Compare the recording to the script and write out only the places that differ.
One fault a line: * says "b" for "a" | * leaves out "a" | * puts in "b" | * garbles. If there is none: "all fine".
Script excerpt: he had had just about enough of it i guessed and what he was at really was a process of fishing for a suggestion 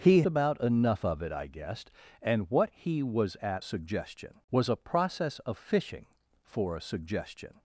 * leaves out "had had just"
* says "suggestion" for "really"